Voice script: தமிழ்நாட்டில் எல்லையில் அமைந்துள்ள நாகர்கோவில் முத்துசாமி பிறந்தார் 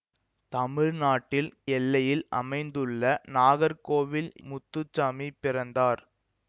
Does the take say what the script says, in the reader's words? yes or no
yes